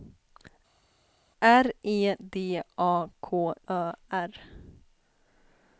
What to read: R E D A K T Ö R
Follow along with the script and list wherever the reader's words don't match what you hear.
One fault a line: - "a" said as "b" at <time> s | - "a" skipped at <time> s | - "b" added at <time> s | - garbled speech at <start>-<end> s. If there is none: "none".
- "T" skipped at 3.5 s